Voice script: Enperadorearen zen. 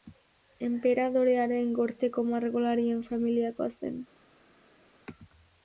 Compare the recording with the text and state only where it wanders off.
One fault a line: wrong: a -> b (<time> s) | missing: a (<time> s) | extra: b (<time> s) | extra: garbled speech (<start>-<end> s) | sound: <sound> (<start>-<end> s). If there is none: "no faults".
extra: gorteko margolarien familiakoa (1.8 s)